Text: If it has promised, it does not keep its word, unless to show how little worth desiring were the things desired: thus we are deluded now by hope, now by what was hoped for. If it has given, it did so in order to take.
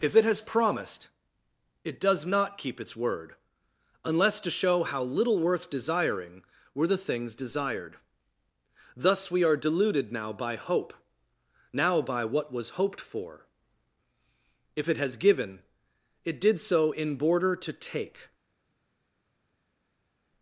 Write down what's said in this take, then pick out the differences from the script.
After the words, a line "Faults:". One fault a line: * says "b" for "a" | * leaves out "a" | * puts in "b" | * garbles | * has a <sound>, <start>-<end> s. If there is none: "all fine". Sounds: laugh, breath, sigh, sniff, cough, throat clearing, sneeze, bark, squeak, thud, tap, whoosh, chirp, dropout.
If it has promised, it does not keep its word, unless to show how little worth desiring were the things desired: thus we are deluded now by hope, now by what was hoped for. If it has given, it did so in border to take.
Faults:
* says "border" for "order"